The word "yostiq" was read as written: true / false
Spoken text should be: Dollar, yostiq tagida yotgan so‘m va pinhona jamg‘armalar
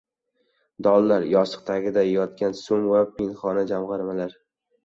true